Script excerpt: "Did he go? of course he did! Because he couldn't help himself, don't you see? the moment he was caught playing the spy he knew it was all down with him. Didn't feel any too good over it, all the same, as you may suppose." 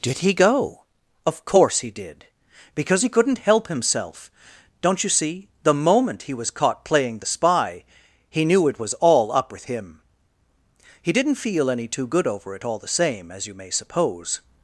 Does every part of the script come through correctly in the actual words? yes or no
no